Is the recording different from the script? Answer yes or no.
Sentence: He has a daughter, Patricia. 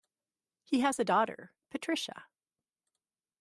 no